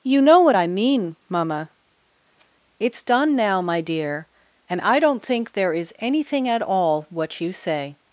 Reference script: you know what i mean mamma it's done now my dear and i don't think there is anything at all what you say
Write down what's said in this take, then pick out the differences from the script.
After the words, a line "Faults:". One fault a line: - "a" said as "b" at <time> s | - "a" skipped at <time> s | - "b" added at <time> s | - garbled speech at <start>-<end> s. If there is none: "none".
you know what i mean mamma it's done now my dear and i don't think there is anything at all what you say
Faults:
none